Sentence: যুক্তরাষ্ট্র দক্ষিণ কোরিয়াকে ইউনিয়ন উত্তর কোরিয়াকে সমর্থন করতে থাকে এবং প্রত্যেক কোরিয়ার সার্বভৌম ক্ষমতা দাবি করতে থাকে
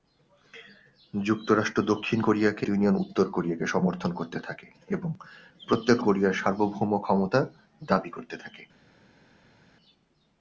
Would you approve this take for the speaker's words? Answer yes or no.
yes